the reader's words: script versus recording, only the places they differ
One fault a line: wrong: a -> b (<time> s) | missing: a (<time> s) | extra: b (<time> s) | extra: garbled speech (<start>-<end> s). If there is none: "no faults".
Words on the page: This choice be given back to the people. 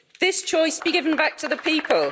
no faults